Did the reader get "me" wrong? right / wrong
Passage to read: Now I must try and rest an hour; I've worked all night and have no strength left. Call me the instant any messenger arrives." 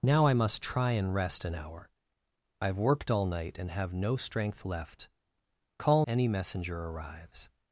wrong